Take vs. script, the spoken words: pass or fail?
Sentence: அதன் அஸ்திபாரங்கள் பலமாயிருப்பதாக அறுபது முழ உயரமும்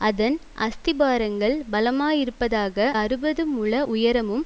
pass